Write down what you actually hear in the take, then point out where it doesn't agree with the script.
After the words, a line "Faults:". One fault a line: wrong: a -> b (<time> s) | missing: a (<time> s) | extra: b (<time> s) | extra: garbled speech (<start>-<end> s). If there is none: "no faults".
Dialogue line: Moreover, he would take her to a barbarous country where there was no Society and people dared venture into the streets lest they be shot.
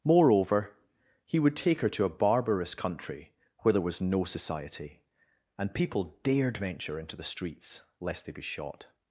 Moreover, he would take her to a barbarous country where there was no Society and people dared venture into the streets lest they be shot.
Faults:
no faults